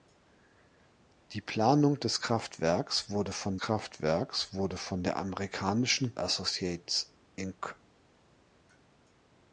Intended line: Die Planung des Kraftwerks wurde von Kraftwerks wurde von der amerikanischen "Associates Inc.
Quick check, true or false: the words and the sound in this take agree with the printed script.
true